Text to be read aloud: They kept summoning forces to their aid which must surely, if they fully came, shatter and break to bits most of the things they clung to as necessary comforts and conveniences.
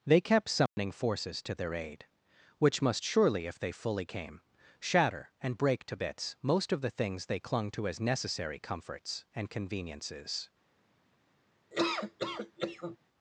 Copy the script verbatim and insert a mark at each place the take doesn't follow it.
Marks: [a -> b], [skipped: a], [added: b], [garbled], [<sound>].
They kept summoning [dropout] forces to their aid which must surely, if they fully came, shatter and break to bits most of the things they clung to as necessary comforts and conveniences. [laugh]